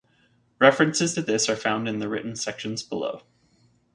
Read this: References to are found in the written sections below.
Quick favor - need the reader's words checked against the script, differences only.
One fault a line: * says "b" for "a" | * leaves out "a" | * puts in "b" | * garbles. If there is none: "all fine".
* puts in "this"